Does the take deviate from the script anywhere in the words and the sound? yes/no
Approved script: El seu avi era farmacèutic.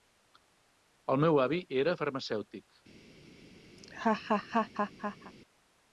yes